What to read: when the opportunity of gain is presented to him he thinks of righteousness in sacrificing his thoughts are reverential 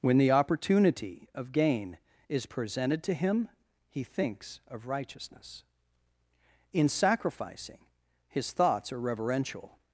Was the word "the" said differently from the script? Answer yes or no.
no